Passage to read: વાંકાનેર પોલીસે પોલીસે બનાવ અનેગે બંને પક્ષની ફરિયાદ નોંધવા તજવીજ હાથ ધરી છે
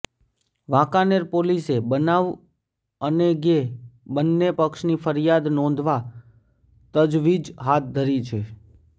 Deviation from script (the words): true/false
true